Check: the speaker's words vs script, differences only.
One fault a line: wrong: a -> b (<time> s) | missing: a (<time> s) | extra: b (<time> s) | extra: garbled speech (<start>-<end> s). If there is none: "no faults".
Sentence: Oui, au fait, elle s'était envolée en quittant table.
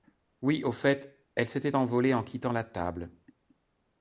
extra: la (2.5 s)